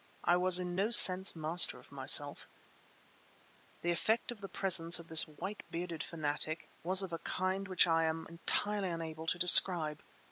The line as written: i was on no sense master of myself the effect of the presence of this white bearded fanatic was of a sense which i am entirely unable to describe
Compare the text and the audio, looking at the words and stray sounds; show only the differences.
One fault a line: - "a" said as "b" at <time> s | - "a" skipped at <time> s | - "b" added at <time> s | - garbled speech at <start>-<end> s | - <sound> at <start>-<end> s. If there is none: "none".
- "on" said as "in" at 0.6 s
- "sense" said as "kind" at 7.2 s